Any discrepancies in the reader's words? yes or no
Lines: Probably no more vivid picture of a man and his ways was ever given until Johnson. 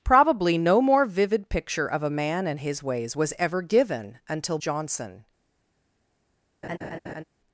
no